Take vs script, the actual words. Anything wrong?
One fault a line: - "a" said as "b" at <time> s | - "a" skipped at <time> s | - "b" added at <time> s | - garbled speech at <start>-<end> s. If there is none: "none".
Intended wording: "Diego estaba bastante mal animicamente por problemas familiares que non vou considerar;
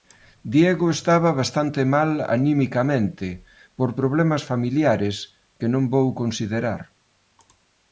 none